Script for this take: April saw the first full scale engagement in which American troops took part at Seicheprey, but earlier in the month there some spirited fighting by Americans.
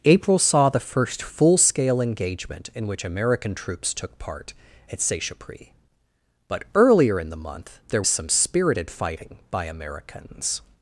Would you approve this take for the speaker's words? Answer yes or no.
yes